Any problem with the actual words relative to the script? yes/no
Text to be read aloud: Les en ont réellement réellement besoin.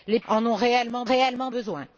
no